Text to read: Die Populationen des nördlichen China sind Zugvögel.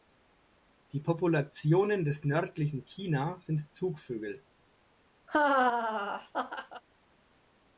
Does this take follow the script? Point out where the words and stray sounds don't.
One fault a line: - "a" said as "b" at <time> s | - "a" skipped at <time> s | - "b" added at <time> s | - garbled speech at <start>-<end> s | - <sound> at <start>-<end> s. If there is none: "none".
- laugh at 5.3-6.8 s